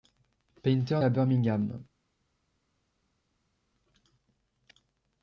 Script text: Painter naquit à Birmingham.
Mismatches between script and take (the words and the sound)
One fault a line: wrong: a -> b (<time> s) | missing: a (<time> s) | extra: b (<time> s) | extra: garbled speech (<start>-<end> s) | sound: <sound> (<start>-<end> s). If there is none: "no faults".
missing: naquit (1.0 s)